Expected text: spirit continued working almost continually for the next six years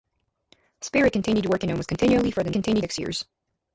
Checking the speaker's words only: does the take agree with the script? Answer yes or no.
no